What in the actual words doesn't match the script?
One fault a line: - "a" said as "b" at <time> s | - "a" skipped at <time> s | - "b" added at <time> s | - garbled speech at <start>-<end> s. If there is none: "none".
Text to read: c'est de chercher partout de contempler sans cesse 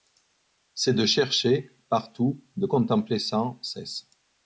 none